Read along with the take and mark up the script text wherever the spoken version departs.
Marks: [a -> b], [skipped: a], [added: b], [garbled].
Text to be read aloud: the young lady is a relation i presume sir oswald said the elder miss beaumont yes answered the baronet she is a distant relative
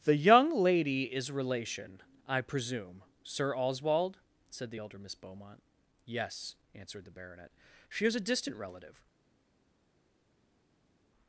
the young lady is [skipped: a] relation i presume sir oswald said the elder miss beaumont yes answered the baronet she is a distant relative